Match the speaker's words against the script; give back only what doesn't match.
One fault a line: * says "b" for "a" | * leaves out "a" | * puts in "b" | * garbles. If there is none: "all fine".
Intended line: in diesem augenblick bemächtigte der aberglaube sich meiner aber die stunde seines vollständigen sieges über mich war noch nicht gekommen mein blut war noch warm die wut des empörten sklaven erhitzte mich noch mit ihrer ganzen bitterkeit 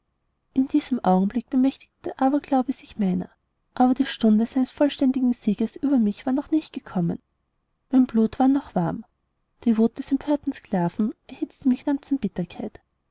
* leaves out "noch mit ihrer"